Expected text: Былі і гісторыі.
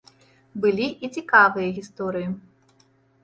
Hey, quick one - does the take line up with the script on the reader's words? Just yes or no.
no